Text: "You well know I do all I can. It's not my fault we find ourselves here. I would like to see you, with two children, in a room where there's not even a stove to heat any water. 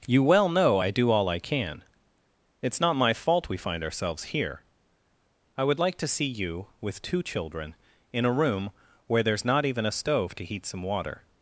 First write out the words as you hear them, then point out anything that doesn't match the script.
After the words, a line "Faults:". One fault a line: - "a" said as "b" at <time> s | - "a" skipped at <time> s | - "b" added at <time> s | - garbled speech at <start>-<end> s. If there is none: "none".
"You well know I do all I can. It's not my fault we find ourselves here. I would like to see you, with two children, in a room where there's not even a stove to heat some water.
Faults:
- "any" said as "some" at 10.7 s